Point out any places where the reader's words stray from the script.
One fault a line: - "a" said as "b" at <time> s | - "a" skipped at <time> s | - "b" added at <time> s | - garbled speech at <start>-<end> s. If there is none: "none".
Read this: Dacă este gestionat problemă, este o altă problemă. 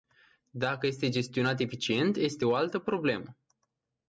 - "problemă" said as "eficient" at 1.6 s